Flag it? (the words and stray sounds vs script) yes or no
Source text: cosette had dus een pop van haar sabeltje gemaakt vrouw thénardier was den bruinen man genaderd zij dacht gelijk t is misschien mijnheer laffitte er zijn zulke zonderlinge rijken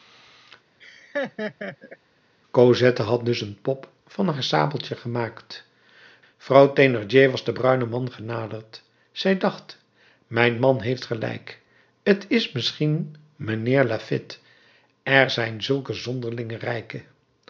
yes